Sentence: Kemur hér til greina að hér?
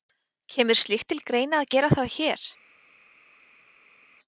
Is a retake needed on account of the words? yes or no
yes